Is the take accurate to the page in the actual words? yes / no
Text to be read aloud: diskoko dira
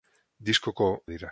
yes